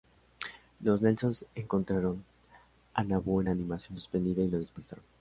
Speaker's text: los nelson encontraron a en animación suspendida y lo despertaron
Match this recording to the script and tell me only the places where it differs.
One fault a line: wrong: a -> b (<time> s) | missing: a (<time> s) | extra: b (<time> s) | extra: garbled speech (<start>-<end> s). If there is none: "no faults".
extra: nabu (3.0 s)